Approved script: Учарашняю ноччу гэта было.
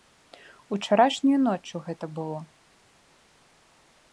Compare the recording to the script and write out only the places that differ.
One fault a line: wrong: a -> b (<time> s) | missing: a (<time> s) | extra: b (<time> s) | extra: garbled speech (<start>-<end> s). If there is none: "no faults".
no faults